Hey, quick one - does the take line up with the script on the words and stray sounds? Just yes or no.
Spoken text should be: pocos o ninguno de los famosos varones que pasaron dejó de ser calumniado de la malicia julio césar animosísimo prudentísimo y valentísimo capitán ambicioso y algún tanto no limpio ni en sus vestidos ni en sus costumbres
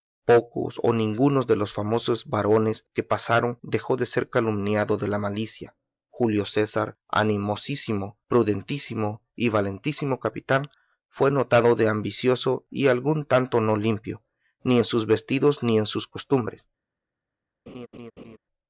no